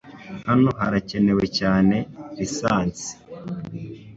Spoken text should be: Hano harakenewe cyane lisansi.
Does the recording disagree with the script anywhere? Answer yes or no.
no